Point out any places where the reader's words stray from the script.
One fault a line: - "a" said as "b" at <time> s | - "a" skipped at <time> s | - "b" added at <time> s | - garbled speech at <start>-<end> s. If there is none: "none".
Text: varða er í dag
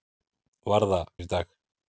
none